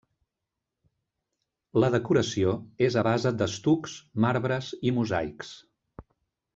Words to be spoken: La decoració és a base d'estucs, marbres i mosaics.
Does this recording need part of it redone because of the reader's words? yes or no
no